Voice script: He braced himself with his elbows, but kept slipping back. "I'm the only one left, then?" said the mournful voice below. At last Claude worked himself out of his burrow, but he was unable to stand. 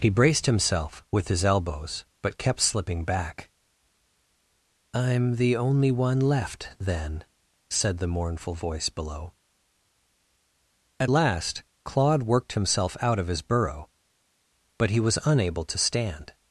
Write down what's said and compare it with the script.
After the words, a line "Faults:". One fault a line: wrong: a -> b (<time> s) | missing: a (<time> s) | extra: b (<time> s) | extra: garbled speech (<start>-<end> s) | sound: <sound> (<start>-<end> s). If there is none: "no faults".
He braced himself with his elbows, but kept slipping back. "I'm the only one left, then?" said the mournful voice below. At last Claude worked himself out of his burrow, but he was unable to stand.
Faults:
no faults